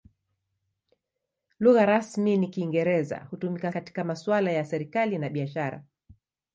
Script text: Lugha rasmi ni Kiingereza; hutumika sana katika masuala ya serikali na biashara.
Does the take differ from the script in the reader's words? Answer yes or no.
yes